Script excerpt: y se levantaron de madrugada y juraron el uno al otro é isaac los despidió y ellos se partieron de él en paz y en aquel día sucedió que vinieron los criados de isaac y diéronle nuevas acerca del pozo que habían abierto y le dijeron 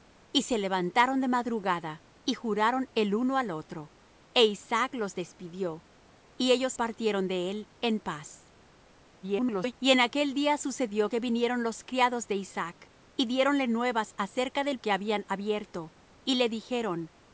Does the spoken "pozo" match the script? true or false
false